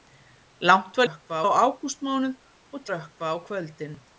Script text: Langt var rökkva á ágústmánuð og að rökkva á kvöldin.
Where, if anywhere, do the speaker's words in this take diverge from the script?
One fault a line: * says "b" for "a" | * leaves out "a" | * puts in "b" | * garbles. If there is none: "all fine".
all fine